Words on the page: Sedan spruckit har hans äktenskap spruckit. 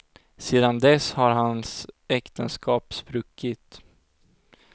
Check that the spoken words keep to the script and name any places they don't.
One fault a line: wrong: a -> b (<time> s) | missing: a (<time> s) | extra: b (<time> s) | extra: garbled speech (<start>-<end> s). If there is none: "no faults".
wrong: spruckit -> dess (0.8 s)